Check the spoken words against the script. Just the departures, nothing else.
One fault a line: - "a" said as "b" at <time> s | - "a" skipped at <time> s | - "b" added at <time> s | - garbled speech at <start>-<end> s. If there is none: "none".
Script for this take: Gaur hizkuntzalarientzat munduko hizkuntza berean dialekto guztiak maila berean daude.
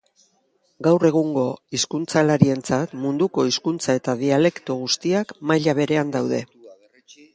- "egungo" added at 1.1 s
- "berean" said as "eta" at 4.0 s